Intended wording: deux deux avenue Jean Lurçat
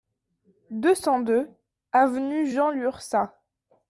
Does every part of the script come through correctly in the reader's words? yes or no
no